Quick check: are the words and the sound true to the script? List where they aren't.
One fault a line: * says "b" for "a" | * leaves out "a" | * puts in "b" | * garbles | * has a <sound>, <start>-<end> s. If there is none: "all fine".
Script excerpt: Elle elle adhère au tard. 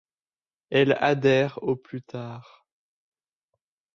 * leaves out "elle"
* puts in "plus"